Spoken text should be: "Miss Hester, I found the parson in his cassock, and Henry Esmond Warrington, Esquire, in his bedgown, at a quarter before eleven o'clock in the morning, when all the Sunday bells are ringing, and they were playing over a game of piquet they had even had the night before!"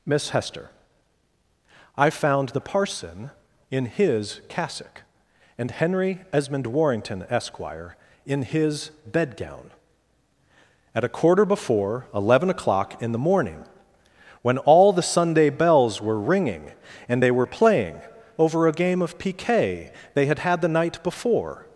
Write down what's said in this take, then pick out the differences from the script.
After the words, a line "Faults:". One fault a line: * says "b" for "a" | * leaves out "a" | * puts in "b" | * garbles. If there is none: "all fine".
"Miss Hester, I found the parson in his cassock, and Henry Esmond Warrington, Esquire, in his bedgown, at a quarter before eleven o'clock in the morning, when all the Sunday bells were ringing, and they were playing over a game of piquet they had had the night before!"
Faults:
* says "were" for "are"
* leaves out "even"